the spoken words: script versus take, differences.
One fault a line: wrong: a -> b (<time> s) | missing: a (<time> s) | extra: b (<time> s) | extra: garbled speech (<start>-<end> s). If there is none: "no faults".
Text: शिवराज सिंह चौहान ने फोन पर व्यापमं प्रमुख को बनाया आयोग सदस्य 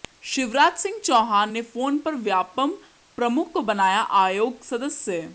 no faults